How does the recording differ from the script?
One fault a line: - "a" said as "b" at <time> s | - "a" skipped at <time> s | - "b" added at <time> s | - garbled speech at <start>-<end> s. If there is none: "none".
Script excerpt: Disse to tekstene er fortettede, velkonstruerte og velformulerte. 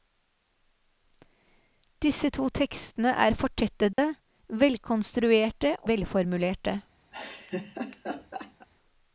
- "og" skipped at 5.8 s